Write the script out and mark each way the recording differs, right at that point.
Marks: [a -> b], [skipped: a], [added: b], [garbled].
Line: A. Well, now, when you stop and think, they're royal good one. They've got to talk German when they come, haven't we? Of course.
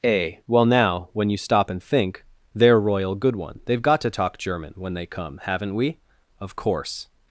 A. Well, now, when you stop and think, they're royal good one. They've got to talk German when they come, haven't we? Of course.